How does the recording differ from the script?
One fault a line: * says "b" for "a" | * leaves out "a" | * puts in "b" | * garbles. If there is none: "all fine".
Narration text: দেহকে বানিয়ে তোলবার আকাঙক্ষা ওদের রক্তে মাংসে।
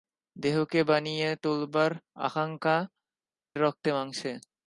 * leaves out "ওদের"